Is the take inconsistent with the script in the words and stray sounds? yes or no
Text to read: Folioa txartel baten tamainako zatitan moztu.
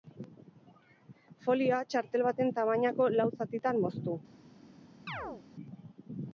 yes